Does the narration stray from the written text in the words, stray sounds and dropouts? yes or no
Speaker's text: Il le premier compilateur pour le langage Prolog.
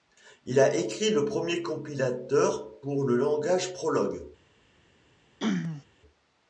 yes